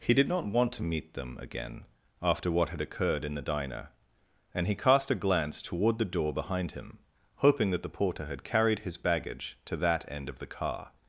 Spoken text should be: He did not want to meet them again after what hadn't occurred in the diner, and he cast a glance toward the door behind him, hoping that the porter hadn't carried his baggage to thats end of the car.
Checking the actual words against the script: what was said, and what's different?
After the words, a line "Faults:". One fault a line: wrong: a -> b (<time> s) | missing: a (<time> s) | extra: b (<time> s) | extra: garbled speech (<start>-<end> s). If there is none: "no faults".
He did not want to meet them again after what had occurred in the diner, and he cast a glance toward the door behind him, hoping that the porter had carried his baggage to that end of the car.
Faults:
wrong: hadn't -> had (2.7 s)
wrong: hadn't -> had (8.2 s)
wrong: thats -> that (9.8 s)